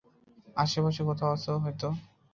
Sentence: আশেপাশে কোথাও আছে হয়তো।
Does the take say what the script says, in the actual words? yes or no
yes